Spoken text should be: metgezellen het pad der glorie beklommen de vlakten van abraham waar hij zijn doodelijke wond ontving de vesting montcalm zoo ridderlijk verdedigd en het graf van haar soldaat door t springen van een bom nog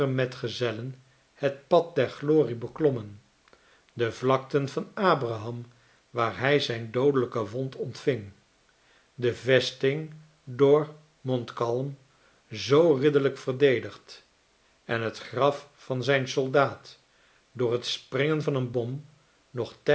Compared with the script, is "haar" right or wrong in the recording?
wrong